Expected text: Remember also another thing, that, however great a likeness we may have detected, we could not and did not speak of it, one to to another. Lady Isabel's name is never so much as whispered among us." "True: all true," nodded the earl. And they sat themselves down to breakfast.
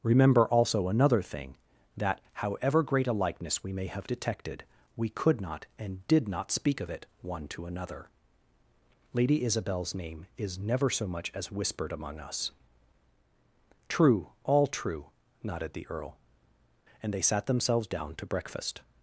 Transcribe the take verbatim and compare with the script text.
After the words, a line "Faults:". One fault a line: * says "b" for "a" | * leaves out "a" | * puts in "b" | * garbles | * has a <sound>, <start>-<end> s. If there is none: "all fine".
Remember also another thing, that, however great a likeness we may have detected, we could not and did not speak of it, one to another. Lady Isabel's name is never so much as whispered among us." "True: all true," nodded the earl. And they sat themselves down to breakfast.
Faults:
* leaves out "to"